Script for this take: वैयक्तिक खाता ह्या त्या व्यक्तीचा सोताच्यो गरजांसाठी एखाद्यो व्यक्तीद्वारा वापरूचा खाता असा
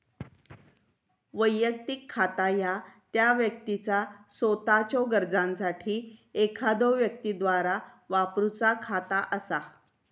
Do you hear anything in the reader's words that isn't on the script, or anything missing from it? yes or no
no